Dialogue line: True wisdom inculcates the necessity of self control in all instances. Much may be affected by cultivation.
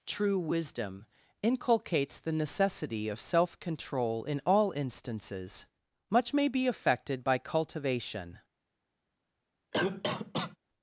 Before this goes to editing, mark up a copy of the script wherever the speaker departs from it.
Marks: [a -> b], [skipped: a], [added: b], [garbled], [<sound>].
True wisdom inculcates the necessity of self control in all instances. Much may be affected by cultivation. [cough]